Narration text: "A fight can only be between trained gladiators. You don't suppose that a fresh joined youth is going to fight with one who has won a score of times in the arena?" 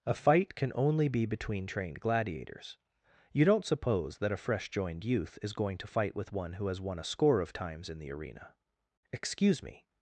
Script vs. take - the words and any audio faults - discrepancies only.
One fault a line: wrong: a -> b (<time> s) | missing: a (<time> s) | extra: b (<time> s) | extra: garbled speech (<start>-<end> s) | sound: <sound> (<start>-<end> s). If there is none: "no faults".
extra: Excuse me (9.1 s)